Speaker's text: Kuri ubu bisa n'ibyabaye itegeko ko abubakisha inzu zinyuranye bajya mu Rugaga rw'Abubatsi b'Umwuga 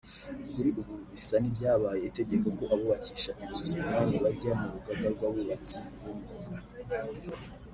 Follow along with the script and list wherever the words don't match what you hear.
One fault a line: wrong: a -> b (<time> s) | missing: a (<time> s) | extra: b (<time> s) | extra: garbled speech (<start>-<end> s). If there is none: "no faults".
no faults